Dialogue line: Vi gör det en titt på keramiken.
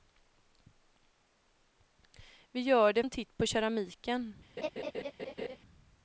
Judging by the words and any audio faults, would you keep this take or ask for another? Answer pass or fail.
fail